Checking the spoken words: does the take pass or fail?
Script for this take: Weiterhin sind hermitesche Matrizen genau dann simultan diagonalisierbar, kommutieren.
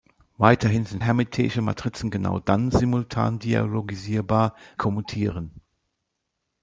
pass